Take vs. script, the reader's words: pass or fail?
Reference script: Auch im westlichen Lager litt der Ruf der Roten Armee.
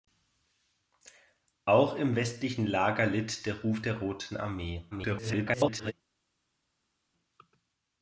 fail